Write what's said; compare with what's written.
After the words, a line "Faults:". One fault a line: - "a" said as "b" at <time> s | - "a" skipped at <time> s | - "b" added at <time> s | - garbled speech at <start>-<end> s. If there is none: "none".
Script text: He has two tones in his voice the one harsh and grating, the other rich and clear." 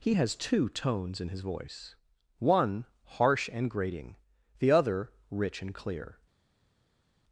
He has two tones in his voice one harsh and grating, the other rich and clear."
Faults:
- "the" skipped at 2.0 s